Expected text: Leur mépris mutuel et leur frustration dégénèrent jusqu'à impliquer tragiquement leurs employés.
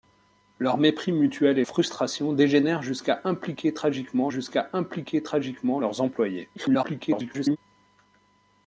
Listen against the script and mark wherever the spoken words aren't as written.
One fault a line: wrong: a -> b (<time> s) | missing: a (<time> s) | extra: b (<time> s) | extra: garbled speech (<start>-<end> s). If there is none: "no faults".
missing: leur (1.6 s)
extra: jusqu'à impliquer tragiquement (4.3 s)
extra: garbled speech (6.6-7.6 s)